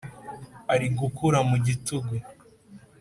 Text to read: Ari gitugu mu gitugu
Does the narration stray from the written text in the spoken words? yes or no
yes